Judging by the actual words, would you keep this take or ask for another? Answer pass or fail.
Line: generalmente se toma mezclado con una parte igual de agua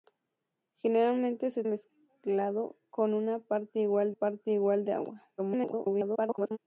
fail